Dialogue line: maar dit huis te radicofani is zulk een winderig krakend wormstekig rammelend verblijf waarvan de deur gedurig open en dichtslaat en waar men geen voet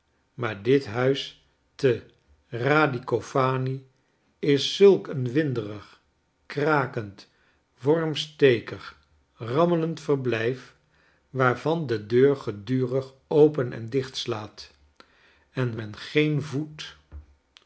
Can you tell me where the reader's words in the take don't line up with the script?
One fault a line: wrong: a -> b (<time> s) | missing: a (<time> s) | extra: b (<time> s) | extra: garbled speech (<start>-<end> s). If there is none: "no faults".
missing: waar (15.8 s)